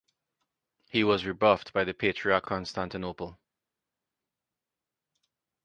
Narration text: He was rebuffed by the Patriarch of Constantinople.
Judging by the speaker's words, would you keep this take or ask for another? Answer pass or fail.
fail